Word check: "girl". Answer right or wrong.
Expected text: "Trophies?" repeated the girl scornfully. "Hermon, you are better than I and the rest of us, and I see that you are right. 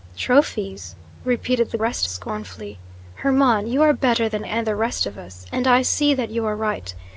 wrong